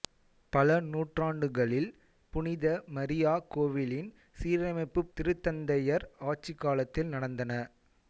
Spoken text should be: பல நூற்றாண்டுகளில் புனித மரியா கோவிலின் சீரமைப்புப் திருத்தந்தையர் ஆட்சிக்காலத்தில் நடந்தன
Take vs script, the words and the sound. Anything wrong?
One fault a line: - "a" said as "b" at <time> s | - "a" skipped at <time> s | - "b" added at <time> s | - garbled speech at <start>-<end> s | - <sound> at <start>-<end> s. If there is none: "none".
none